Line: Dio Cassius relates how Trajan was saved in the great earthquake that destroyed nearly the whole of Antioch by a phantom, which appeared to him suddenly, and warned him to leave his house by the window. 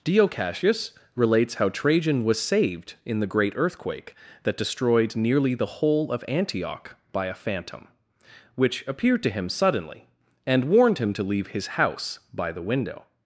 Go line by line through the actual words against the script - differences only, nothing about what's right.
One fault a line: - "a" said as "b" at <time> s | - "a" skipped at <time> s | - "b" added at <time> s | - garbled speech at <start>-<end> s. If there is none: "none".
none